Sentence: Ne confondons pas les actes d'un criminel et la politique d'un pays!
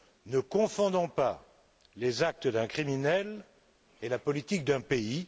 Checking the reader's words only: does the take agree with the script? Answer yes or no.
yes